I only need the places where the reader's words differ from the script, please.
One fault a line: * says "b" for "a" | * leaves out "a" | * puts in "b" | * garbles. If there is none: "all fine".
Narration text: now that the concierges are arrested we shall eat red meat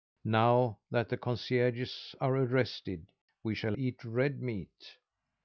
all fine